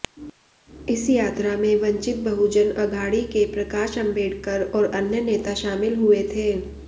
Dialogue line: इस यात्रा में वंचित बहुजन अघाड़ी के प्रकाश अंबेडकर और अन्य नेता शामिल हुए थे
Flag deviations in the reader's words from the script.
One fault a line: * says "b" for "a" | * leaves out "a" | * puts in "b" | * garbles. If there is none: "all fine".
all fine